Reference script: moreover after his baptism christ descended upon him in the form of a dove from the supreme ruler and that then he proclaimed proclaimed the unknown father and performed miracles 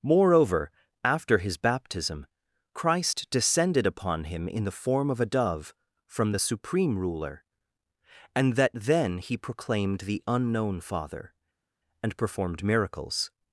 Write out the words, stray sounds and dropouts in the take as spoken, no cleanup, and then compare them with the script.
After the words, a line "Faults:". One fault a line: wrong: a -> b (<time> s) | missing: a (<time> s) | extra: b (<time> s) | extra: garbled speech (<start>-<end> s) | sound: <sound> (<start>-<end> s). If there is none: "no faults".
moreover after his baptism christ descended upon him in the form of a dove from the supreme ruler and that then he proclaimed the unknown father and performed miracles
Faults:
missing: proclaimed (10.0 s)